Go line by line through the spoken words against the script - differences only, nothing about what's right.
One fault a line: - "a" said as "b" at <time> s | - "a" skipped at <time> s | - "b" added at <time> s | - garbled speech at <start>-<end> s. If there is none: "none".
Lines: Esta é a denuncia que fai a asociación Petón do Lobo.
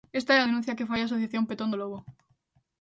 none